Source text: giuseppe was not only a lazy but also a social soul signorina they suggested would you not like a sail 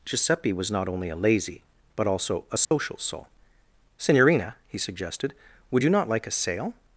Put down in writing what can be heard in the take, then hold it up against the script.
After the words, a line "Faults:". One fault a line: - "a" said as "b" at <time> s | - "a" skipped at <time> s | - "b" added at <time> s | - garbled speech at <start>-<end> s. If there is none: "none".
giuseppe was not only a lazy but also a social soul signorina he suggested would you not like a sail
Faults:
- "they" said as "he" at 4.7 s